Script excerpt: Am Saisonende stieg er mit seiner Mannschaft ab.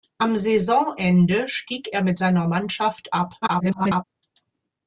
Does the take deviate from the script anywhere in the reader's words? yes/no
yes